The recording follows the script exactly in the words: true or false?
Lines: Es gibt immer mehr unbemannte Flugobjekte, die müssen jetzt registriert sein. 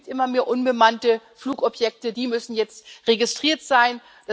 true